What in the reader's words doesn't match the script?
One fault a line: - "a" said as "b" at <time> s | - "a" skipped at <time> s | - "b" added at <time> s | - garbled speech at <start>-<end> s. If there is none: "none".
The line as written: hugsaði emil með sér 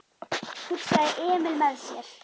none